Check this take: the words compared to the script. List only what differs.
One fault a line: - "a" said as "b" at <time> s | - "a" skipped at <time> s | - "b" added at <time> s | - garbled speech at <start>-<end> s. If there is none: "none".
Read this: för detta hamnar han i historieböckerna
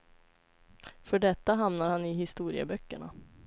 none